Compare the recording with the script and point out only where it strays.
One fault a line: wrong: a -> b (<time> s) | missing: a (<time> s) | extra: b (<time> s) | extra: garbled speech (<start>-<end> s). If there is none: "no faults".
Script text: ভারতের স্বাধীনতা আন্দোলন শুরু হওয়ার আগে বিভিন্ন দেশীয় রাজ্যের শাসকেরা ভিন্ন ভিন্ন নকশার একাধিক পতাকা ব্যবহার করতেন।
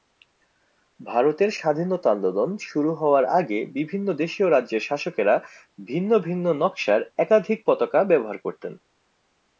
no faults